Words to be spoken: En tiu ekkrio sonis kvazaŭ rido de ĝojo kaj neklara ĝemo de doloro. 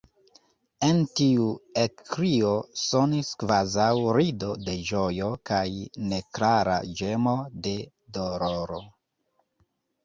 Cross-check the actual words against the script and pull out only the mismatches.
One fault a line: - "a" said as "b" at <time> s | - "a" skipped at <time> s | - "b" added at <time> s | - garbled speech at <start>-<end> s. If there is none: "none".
none